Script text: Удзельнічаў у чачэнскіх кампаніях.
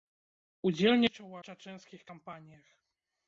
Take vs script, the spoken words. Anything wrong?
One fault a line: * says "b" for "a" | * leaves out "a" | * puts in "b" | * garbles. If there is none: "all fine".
all fine